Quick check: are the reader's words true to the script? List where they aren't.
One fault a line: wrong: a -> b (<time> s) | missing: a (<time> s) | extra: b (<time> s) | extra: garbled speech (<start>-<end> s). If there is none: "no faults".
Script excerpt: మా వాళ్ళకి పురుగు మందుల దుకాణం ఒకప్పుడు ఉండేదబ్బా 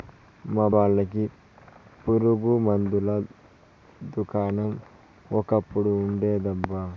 no faults